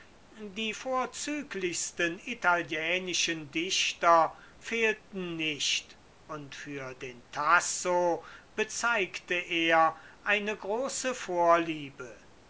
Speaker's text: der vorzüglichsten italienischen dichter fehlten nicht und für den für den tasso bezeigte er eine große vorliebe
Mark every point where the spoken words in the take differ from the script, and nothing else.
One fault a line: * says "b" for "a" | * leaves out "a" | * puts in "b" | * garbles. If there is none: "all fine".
* says "die" for "der"
* leaves out "für den"